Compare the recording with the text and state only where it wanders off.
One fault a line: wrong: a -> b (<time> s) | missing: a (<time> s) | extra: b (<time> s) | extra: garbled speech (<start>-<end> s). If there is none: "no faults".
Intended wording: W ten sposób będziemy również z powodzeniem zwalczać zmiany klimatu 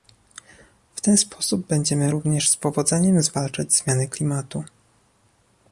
no faults